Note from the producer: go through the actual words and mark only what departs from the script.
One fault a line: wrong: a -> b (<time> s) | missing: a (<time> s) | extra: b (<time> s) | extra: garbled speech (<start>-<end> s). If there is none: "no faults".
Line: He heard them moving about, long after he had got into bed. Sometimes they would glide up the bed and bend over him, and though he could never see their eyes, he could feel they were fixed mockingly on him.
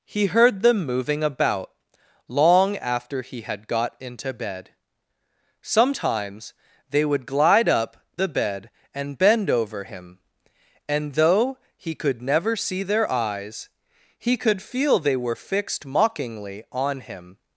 no faults